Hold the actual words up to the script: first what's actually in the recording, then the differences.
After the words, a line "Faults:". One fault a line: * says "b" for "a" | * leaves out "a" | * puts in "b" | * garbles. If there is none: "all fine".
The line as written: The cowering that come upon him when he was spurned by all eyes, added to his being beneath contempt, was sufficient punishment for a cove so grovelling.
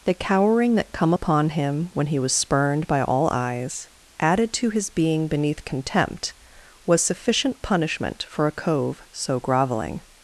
The cowering that come upon him when he was spurned by all eyes, added to his being beneath contempt, was sufficient punishment for a cove so grovelling.
Faults:
all fine